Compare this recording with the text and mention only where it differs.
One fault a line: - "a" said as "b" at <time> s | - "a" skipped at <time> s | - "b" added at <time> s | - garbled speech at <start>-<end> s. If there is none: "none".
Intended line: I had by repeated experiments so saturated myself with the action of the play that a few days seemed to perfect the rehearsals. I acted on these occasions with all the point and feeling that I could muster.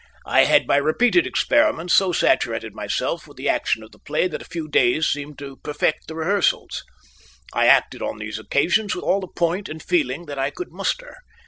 none